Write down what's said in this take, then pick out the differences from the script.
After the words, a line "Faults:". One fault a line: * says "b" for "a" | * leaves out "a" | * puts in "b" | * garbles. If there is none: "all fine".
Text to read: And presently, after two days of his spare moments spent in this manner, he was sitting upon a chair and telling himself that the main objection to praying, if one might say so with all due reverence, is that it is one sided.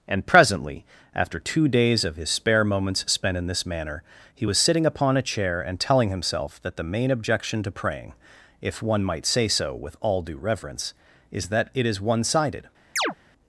And presently, after two days of his spare moments spent in this manner, he was sitting upon a chair and telling himself that the main objection to praying, if one might say so with all due reverence, is that it is one sided.
Faults:
all fine